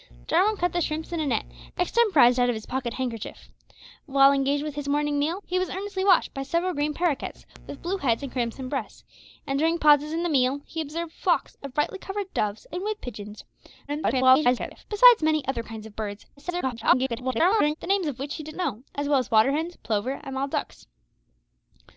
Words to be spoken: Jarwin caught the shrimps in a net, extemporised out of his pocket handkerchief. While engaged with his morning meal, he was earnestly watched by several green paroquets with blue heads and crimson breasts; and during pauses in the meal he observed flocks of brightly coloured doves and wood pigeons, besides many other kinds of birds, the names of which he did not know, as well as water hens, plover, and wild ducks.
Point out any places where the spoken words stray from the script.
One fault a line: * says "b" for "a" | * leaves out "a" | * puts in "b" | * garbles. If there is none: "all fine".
* garbles
* garbles
* leaves out "not"